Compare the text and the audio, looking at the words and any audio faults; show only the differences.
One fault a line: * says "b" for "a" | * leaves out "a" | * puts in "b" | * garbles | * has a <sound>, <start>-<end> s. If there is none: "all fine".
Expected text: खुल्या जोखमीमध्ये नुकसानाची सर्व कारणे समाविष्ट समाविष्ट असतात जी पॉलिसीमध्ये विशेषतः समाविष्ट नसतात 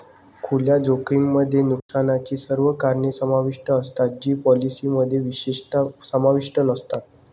* has a dropout, 1.8-1.9 s
* leaves out "समाविष्ट"